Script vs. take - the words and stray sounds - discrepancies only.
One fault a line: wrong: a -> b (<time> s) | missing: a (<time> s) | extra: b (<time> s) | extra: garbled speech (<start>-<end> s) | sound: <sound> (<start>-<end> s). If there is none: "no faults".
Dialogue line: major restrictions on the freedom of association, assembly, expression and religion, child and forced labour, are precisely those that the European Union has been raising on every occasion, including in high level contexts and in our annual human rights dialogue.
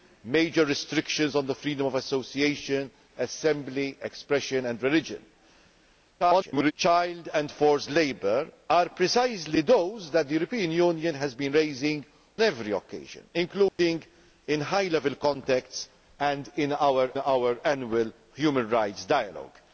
extra: garbled speech (6.2-6.7 s)
missing: on (12.1 s)
sound: dropout (13.7-13.8 s)
extra: our (17.2 s)